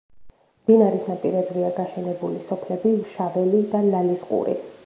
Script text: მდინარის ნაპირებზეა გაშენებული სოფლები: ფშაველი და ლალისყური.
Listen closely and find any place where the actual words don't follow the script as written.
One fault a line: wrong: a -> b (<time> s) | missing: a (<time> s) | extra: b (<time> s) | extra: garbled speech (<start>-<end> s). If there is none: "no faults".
no faults